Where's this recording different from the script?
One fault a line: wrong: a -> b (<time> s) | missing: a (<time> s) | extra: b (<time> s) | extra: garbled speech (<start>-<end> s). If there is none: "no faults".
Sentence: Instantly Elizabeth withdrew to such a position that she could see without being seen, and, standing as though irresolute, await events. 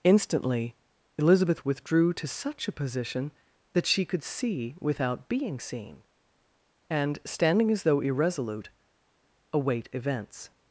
no faults